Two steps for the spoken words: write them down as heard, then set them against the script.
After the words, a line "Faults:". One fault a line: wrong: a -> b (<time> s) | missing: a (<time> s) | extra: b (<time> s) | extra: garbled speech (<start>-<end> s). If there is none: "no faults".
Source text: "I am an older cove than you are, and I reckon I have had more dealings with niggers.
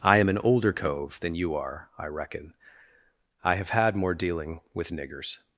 "I am an older cove than you are, I reckon I have had more dealing with niggers.
Faults:
missing: and (1.9 s)
wrong: dealings -> dealing (4.1 s)